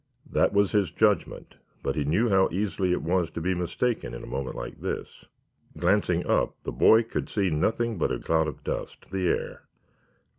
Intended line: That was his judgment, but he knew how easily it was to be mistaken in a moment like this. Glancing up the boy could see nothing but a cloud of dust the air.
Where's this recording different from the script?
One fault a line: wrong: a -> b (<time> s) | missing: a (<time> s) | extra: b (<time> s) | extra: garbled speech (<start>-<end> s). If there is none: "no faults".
no faults